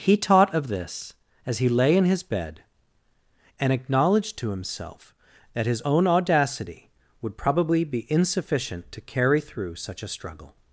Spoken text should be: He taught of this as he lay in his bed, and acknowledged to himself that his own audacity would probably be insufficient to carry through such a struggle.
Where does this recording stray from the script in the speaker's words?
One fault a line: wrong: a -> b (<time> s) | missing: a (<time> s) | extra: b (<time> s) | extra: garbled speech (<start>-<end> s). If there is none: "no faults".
no faults